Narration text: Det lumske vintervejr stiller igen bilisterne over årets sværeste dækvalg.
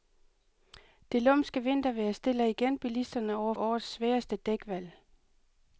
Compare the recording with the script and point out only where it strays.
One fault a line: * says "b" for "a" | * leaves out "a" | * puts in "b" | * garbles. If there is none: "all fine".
all fine